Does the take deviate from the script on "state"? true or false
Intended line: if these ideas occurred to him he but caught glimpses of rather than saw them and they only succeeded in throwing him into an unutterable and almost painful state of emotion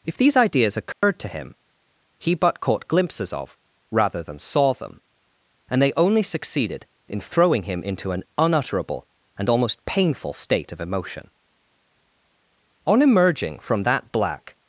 false